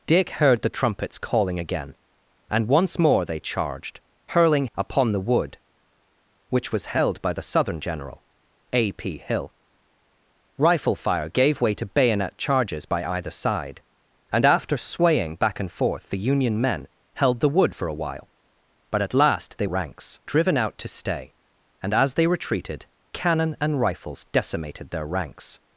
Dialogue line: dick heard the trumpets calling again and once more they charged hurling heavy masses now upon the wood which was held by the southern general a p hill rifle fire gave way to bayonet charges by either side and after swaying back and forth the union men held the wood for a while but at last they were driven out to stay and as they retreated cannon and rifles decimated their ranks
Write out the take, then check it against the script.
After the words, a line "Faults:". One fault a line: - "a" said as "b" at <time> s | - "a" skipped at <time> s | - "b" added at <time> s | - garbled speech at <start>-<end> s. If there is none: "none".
dick heard the trumpets calling again and once more they charged hurling upon the wood which was held by the southern general a p hill rifle fire gave way to bayonet charges by either side and after swaying back and forth the union men held the wood for a while but at last they ranks driven out to stay and as they retreated cannon and rifles decimated their ranks
Faults:
- "heavy masses now" skipped at 4.7 s
- "were" said as "ranks" at 19.6 s